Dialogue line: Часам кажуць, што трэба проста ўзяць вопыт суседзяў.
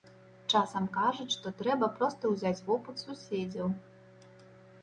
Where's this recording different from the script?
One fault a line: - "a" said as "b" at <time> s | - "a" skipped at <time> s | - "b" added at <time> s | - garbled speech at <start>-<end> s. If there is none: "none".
none